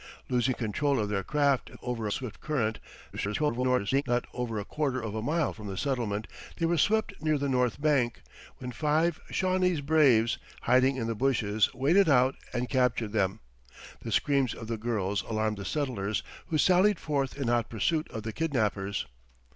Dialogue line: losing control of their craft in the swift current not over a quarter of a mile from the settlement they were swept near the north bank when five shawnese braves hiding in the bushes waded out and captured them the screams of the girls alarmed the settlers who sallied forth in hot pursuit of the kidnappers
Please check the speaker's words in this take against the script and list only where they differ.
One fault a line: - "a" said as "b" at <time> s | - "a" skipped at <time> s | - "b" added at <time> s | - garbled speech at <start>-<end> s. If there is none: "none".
- "the" said as "over" at 1.8 s
- garbled speech at 3.1-4.0 s